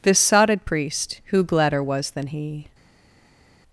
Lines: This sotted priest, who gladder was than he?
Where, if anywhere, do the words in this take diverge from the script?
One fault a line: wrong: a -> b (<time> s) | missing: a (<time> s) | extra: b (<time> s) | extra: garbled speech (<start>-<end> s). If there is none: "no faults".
no faults